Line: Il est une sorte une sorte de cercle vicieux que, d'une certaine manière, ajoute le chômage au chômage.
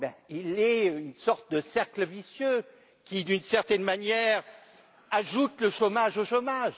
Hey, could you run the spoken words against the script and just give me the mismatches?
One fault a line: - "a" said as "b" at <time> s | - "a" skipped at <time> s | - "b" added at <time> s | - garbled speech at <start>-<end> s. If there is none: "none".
- "une sorte" skipped at 1.5 s
- "que" said as "qui" at 3.0 s